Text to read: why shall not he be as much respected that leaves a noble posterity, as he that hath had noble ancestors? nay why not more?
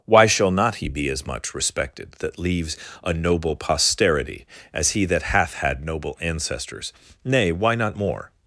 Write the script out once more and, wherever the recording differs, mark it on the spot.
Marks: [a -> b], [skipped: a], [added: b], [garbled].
why shall not he be as much respected that leaves a noble posterity, as he that hath had noble ancestors? nay why not more?